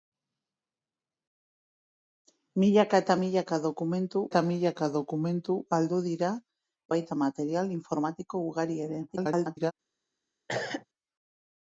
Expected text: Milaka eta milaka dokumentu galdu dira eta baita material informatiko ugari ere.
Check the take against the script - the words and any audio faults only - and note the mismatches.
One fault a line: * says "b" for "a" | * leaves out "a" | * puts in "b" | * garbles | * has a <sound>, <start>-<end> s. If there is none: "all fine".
* puts in "eta milaka dokumentu"
* leaves out "eta"
* garbles
* has a cough, 10.5-10.9 s